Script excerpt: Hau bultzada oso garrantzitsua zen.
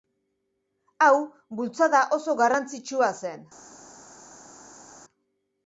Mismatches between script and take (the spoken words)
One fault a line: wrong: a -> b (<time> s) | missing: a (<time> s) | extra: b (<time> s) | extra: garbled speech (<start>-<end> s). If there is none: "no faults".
no faults